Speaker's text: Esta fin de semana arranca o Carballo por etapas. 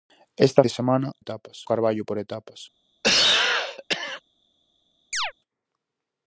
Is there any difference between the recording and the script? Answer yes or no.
yes